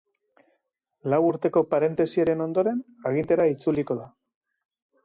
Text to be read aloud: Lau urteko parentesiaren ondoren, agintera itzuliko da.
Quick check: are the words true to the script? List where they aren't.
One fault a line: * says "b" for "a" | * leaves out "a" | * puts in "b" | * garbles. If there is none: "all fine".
all fine